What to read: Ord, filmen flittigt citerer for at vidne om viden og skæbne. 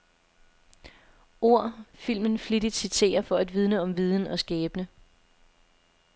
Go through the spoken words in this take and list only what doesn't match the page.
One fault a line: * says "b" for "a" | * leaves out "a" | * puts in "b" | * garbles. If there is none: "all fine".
all fine